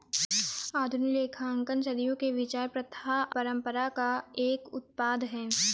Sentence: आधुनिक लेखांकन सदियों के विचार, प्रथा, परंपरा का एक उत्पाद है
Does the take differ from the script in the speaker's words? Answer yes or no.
no